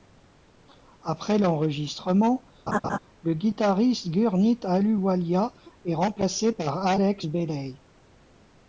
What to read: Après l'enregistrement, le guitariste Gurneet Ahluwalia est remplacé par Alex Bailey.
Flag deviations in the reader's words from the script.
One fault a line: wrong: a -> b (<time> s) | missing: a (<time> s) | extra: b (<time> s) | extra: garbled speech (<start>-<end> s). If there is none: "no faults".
no faults